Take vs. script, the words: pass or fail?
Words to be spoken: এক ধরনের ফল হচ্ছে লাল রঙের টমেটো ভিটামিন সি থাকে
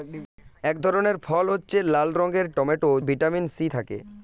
pass